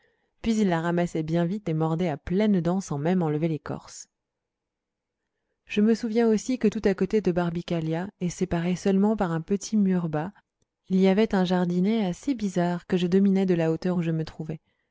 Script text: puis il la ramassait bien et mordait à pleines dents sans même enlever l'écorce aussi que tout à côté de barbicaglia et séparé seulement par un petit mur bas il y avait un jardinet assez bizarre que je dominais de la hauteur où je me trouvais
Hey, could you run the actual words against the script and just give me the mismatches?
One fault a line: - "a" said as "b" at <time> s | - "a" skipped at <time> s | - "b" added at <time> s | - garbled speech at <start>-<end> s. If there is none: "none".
- "vite" added at 1.4 s
- "je me souviens" added at 5.6 s